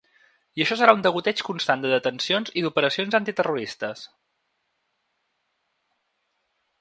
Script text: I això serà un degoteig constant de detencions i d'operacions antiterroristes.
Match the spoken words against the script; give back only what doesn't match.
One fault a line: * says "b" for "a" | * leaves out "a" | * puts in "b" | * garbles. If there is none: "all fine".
all fine